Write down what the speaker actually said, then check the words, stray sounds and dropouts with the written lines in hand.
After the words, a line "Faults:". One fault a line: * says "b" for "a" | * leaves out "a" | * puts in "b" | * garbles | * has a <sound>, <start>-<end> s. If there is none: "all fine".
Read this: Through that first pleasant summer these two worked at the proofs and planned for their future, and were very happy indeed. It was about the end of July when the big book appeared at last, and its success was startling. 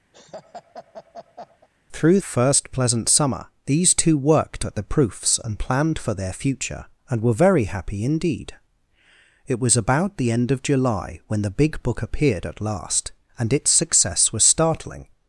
Through first pleasant summer these two worked at the proofs and planned for their future, and were very happy indeed. It was about the end of July when the big book appeared at last, and its success was startling.
Faults:
* has a laugh, 0.1-1.7 s
* leaves out "that"